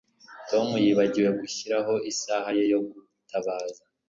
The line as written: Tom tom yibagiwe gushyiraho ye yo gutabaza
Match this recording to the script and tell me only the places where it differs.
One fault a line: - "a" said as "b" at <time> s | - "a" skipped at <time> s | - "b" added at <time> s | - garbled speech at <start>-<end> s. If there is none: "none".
- "tom" skipped at 0.7 s
- "isaha" added at 2.1 s